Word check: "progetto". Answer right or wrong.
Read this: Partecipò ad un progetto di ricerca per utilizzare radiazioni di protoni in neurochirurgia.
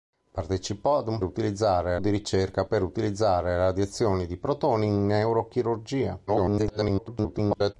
wrong